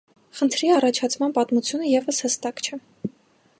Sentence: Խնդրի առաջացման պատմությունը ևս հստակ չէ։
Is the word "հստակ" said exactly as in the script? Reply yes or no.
yes